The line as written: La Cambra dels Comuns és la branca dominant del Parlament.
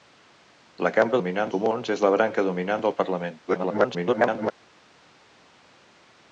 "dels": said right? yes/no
no